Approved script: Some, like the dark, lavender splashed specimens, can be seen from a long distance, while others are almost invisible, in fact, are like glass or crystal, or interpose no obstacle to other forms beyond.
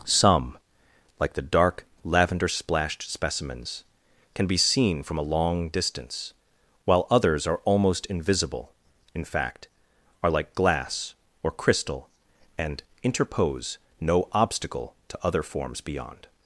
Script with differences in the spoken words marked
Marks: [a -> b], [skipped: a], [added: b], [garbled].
Some, like the dark, lavender splashed specimens, can be seen from a long distance, while others are almost invisible, in fact, are like glass or crystal, [or -> and] interpose no obstacle to other forms beyond.